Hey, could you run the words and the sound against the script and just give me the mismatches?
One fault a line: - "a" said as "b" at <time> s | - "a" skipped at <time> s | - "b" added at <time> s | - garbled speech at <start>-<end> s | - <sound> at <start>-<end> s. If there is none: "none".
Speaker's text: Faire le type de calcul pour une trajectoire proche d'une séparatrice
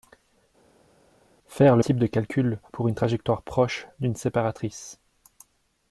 none